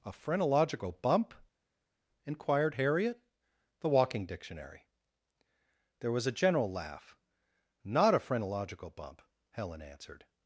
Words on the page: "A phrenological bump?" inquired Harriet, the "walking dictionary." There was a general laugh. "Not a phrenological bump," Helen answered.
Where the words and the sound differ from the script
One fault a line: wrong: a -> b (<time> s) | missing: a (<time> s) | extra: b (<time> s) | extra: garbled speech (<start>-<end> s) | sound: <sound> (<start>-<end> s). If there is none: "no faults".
no faults